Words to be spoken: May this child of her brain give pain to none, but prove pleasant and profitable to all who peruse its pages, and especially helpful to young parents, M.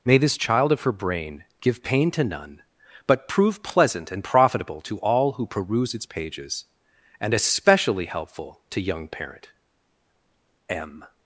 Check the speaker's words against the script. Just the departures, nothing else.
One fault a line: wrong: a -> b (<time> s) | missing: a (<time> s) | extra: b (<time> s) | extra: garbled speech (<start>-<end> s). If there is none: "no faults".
wrong: parents -> parent (9.1 s)